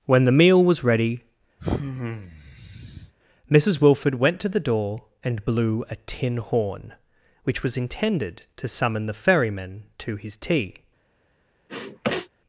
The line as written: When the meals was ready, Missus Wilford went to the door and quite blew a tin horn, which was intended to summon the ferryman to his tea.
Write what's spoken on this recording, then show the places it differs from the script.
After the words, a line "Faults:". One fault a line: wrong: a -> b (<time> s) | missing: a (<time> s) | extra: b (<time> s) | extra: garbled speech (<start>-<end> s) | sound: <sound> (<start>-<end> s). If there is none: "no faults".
When the meal was ready, Missus Wilford went to the door and blew a tin horn, which was intended to summon the ferryman to his tea.
Faults:
wrong: meals -> meal (0.3 s)
sound: sigh (1.6-3.1 s)
missing: quite (5.4 s)
sound: sniff (11.7-12.3 s)